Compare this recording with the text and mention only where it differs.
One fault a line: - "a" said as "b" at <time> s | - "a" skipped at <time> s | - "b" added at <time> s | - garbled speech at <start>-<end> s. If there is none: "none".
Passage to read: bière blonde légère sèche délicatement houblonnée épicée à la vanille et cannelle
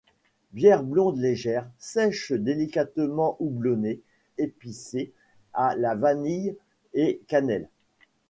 none